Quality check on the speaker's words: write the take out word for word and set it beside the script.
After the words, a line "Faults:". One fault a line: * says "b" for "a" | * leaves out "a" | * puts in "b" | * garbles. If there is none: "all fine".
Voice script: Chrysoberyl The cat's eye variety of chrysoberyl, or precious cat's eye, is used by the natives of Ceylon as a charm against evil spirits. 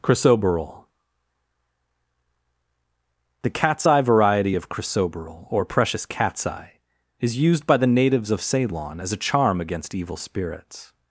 Chrysoberyl The cat's eye variety of chrysoberyl, or precious cat's eye, is used by the natives of Ceylon as a charm against evil spirits.
Faults:
all fine